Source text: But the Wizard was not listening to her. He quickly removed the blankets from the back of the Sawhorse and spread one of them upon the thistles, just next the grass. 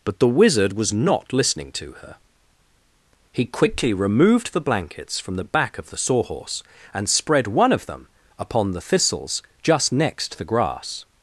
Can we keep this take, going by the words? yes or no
yes